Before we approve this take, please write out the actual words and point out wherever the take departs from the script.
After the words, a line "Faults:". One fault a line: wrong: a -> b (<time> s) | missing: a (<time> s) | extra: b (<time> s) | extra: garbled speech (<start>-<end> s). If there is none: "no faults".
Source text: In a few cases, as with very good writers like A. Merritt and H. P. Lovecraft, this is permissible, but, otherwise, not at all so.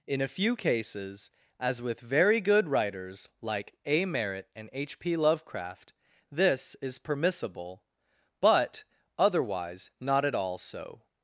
In a few cases, as with very good writers like A. Merritt and H. P. Lovecraft, this is permissible, but, otherwise, not at all so.
Faults:
no faults